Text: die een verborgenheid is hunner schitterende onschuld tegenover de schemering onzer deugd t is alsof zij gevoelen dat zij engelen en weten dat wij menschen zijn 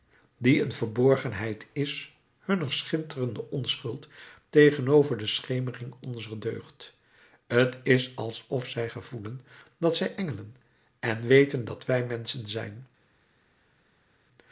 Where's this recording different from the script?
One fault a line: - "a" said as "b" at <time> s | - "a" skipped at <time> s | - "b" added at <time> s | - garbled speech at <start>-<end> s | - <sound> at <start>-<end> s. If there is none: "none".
none